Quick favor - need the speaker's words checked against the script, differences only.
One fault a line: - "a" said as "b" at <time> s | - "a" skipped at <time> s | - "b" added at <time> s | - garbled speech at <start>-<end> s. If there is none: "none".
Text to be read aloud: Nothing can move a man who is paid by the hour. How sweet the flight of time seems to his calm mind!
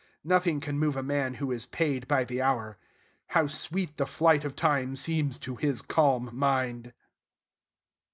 none